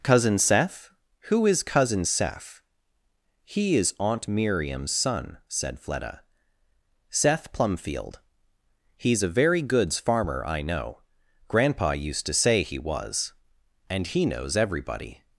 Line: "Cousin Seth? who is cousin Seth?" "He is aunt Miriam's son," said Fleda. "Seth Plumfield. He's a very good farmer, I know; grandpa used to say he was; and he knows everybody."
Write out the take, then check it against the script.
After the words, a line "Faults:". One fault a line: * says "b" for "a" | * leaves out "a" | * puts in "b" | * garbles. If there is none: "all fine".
"Cousin Seth? who is cousin Seth?" "He is aunt Miriam's son," said Fleda. "Seth Plumfield. He's a very goods farmer, I know; grandpa used to say he was; and he knows everybody."
Faults:
* says "goods" for "good"